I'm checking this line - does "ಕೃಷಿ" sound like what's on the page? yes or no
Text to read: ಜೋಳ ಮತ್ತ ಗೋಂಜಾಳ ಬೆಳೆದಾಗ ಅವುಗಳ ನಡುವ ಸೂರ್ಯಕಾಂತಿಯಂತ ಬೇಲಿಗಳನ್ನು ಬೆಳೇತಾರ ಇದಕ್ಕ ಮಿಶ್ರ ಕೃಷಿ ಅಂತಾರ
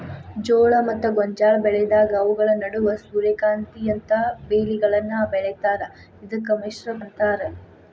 no